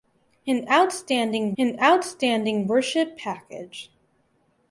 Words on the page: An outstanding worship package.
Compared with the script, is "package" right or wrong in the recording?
right